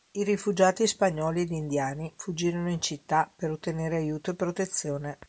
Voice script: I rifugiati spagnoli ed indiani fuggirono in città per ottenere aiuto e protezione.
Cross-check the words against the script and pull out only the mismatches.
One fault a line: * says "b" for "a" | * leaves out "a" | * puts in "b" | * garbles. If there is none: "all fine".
all fine